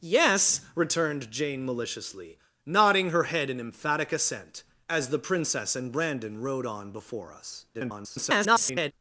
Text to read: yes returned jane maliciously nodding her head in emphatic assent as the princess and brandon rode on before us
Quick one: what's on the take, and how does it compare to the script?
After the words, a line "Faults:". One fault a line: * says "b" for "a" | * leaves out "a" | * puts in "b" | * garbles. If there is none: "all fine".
yes returned jane maliciously nodding her head in emphatic assent as the princess and brandon rode on before us [garbled]
Faults:
* garbles